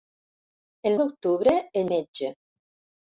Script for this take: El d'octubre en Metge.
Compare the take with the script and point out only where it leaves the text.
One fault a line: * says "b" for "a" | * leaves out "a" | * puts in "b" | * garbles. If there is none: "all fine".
all fine